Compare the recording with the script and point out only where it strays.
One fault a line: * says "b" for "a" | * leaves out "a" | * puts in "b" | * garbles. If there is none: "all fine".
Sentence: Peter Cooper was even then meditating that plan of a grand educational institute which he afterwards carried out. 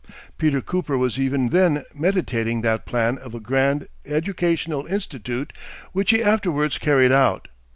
all fine